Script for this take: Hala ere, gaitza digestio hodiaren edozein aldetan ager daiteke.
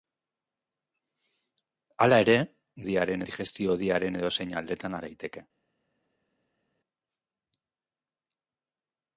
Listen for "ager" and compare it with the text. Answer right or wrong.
wrong